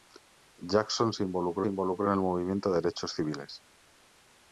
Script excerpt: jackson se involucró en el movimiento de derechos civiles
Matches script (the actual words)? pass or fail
fail